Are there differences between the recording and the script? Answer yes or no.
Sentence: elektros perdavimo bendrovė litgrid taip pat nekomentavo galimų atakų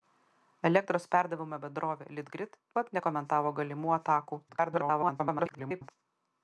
yes